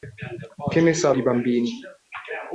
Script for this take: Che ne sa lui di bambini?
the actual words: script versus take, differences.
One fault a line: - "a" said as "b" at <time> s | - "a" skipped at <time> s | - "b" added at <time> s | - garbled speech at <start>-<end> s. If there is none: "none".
- "lui" skipped at 1.1 s